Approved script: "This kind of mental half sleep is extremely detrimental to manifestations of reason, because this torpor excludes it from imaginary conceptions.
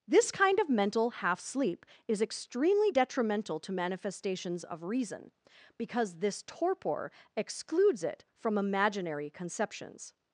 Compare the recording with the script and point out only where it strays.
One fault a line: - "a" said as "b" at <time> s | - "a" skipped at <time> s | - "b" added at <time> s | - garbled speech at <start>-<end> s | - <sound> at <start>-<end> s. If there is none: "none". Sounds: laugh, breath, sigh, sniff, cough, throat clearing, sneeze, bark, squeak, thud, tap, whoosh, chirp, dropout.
none